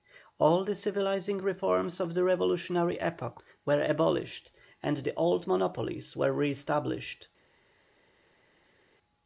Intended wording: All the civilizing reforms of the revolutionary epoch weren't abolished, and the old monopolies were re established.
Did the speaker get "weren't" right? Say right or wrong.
wrong